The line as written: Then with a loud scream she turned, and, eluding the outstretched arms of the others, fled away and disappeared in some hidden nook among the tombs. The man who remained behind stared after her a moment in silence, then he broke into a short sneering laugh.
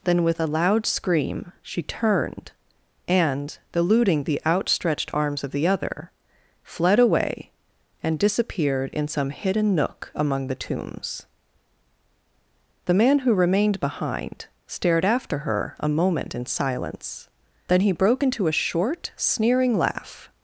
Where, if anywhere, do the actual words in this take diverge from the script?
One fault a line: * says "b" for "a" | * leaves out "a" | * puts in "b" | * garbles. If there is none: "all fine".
* says "other" for "others"